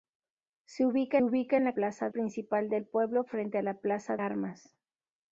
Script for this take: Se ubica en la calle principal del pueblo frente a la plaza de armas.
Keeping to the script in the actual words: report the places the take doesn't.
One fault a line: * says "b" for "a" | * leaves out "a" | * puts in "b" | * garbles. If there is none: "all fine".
* puts in "ubica"
* says "plaza" for "calle"
* leaves out "de"